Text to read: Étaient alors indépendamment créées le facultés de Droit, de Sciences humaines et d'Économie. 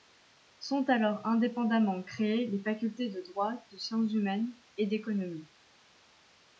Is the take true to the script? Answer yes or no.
no